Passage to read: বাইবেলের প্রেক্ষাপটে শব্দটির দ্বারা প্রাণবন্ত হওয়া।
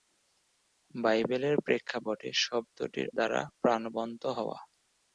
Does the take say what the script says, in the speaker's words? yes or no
yes